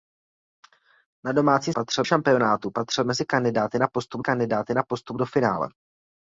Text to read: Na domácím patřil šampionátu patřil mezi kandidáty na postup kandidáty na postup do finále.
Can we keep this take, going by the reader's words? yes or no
yes